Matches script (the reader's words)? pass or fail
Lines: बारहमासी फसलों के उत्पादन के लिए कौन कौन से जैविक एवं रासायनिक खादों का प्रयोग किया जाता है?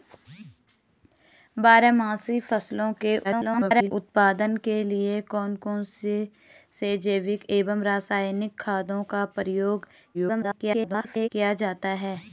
fail